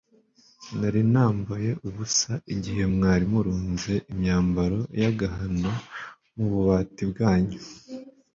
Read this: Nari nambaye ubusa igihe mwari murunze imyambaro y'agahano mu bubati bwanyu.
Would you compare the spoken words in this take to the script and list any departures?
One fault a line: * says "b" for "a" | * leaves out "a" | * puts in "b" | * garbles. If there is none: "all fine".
all fine